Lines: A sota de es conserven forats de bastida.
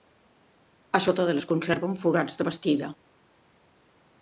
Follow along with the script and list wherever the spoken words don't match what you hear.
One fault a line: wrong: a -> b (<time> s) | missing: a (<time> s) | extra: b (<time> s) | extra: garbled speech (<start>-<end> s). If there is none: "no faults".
no faults